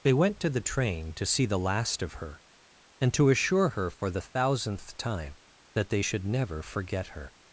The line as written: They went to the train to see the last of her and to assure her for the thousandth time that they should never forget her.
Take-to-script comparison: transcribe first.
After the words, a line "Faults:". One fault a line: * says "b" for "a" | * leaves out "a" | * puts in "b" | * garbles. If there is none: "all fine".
They went to the train to see the last of her and to assure her for the thousandth time that they should never forget her.
Faults:
all fine